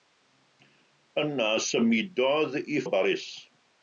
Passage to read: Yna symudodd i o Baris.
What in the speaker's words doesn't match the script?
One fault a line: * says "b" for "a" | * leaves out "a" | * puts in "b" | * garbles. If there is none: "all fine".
all fine